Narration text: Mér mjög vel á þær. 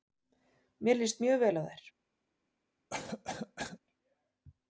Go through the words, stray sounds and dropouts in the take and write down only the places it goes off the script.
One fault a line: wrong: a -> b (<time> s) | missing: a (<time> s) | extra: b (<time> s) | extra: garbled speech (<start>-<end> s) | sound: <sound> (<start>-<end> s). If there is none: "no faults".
extra: líst (1.0 s)
sound: cough (2.9-3.8 s)